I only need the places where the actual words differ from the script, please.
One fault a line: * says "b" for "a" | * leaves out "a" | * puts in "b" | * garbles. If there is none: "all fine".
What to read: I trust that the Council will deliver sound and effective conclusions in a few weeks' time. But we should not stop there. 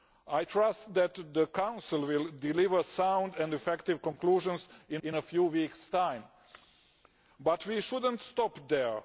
* puts in "in"